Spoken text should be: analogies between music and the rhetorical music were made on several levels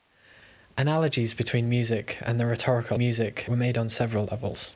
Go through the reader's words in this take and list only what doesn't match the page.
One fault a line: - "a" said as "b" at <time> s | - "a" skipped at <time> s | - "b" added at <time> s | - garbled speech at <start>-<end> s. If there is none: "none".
none